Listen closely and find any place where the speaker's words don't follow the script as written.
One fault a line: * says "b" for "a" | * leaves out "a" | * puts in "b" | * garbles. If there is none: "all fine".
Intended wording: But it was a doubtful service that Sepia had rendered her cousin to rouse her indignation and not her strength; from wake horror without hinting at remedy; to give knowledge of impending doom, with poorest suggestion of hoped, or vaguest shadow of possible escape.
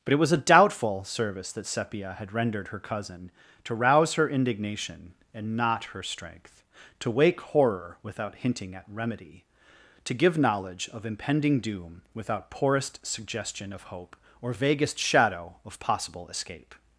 * says "to" for "from"
* says "without" for "with"
* says "hope" for "hoped"